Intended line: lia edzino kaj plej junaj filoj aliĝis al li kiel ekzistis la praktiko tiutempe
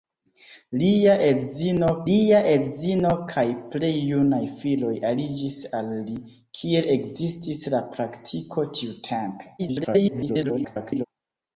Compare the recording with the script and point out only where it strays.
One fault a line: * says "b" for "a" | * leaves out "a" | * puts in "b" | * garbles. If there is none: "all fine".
* puts in "lia edzino"
* garbles